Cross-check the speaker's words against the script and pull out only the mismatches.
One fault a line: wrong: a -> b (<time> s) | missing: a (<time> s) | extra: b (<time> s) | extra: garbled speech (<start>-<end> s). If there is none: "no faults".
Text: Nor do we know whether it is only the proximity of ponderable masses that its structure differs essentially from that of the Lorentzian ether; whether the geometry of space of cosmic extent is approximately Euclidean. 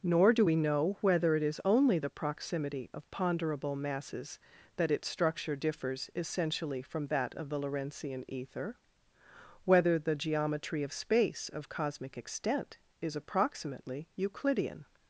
no faults